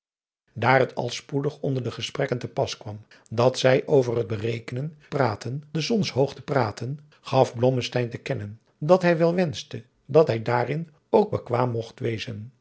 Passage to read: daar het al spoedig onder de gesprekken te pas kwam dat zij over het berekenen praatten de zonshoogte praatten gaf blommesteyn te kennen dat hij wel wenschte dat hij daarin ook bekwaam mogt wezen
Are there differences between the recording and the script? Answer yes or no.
no